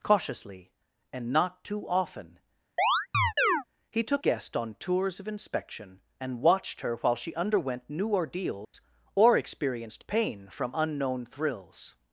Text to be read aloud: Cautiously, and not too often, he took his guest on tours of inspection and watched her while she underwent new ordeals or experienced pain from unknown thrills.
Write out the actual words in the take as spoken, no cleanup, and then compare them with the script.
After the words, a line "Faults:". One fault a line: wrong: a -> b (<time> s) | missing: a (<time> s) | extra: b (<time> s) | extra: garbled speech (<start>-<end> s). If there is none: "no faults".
Cautiously, and not too often, he took guest on tours of inspection and watched her while she underwent new ordeals or experienced pain from unknown thrills.
Faults:
missing: his (4.2 s)